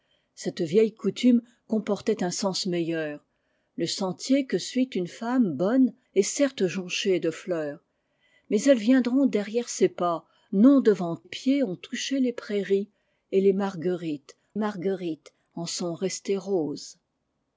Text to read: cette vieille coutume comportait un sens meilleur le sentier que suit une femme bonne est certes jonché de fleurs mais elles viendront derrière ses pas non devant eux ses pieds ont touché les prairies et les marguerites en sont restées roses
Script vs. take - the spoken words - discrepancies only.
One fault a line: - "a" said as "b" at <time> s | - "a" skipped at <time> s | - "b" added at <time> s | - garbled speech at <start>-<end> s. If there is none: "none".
- "eux ses" skipped at 11.2 s
- "marguerites" added at 14.5 s